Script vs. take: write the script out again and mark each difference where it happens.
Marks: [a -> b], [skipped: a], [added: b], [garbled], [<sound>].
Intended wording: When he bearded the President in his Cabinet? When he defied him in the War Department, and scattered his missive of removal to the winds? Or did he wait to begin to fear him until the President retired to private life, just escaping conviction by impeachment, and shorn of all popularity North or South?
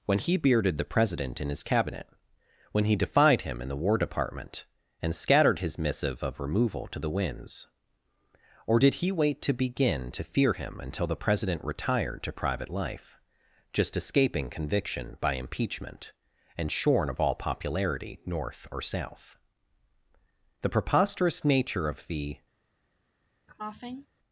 When he bearded the President in his Cabinet? When he defied him in the War Department, and scattered his missive of removal to the winds? Or did he wait to begin to fear him until the President retired to private life, just escaping conviction by impeachment, and shorn of all popularity North or South? [added: The preposterous nature of the] [cough]